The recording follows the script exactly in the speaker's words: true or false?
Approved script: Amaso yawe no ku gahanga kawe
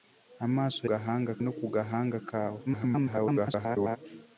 false